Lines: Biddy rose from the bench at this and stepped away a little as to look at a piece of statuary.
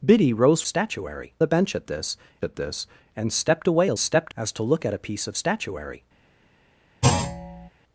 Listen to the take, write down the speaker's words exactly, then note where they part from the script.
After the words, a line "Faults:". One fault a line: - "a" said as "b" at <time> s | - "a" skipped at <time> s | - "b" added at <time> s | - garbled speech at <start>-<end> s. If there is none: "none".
Biddy rose statuary the bench at this at this and stepped away a stepped as to look at a piece of statuary.
Faults:
- "from" said as "statuary" at 0.7 s
- "at this" added at 2.4 s
- "little" said as "stepped" at 4.0 s